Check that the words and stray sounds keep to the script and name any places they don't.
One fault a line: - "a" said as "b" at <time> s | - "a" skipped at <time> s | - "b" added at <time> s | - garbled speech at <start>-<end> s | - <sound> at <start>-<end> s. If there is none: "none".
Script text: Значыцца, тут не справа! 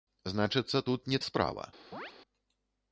- chirp at 1.9-2.1 s